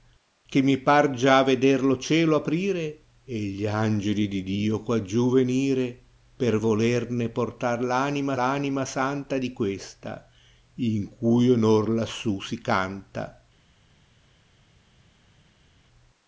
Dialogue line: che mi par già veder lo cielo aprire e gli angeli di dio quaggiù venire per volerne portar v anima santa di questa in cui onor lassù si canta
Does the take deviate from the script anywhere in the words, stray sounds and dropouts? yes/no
yes